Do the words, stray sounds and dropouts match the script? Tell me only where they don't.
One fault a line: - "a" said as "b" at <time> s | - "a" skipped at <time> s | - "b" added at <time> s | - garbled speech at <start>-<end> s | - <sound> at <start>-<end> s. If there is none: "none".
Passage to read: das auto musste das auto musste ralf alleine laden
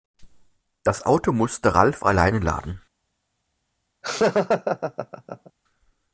- "das auto musste" skipped at 1.8 s
- laugh at 4.0-5.5 s